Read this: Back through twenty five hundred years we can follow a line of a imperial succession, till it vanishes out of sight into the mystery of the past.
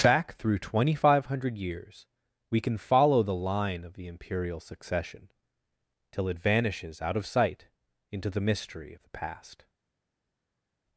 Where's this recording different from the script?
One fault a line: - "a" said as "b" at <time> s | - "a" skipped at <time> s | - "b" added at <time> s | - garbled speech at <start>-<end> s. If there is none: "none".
- "a" said as "the" at 3.2 s
- "a" said as "the" at 3.9 s